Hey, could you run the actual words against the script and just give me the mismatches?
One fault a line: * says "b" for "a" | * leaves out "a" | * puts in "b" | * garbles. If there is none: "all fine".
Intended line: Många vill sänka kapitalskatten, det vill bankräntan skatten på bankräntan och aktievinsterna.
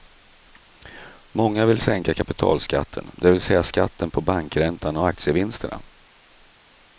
* says "säga" for "bankräntan"